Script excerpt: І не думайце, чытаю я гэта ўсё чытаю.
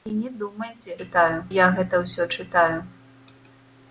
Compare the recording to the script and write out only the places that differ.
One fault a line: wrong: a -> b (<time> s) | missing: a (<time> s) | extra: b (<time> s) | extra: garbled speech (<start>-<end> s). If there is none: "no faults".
no faults